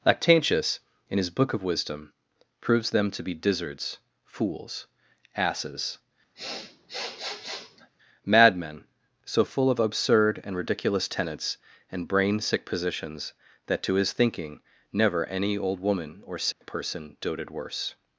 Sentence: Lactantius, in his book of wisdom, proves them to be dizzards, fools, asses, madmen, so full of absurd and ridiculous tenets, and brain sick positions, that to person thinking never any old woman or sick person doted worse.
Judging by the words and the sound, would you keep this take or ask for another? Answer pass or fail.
fail